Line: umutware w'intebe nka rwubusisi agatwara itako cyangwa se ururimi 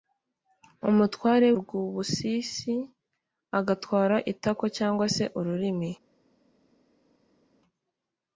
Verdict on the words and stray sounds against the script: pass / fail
fail